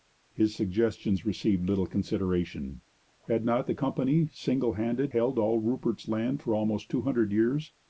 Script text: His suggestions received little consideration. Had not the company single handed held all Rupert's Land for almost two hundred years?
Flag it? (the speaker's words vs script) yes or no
no